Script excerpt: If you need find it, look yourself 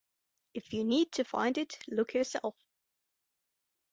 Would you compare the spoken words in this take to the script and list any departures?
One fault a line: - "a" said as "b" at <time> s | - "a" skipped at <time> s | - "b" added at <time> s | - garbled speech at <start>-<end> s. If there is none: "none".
- "to" added at 1.1 s